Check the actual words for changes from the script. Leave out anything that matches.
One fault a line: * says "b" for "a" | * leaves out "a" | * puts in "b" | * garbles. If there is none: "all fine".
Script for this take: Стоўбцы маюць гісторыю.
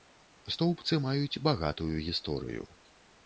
* puts in "багатую"